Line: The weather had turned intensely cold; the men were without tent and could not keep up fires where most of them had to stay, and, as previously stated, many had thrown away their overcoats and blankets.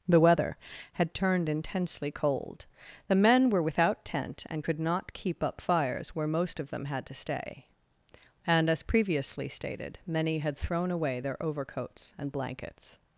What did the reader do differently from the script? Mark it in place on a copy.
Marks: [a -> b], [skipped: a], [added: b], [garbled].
The weather had turned intensely cold; the men were without tent and could not keep up fires where most of them had to stay, and, as previously stated, many had thrown away their overcoats and blankets.